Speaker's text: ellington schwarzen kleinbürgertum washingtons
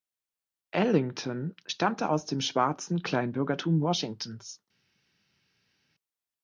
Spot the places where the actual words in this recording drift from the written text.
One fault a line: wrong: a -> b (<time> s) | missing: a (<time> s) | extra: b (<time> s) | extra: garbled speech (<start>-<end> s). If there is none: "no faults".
extra: stammte aus dem (1.7 s)